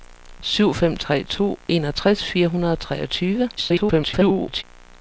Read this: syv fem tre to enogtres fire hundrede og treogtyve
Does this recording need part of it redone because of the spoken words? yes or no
yes